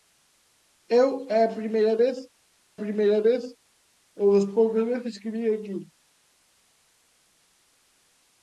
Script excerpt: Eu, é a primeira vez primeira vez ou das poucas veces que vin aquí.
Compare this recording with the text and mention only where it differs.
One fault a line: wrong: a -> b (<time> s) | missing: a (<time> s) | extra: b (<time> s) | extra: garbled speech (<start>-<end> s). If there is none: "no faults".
no faults